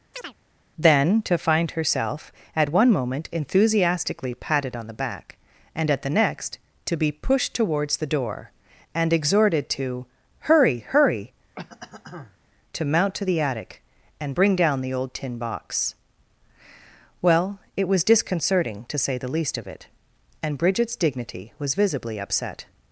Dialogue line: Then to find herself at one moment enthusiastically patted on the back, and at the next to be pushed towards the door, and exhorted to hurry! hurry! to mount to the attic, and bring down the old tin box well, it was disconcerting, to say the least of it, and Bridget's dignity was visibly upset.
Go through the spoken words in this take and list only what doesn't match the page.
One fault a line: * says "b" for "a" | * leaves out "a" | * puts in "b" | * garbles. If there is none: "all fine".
all fine